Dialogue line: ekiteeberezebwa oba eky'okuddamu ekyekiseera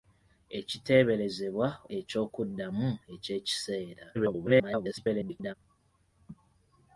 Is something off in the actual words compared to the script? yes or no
yes